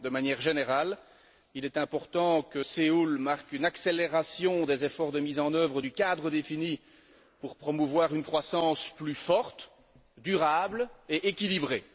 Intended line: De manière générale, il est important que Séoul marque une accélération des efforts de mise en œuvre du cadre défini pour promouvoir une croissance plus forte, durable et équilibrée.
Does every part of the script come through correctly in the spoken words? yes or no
yes